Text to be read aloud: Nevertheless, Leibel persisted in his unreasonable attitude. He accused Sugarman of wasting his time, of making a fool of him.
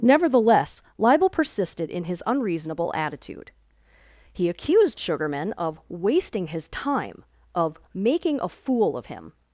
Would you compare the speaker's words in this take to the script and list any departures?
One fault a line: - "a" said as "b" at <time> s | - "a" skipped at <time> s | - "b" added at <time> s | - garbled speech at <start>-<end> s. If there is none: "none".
none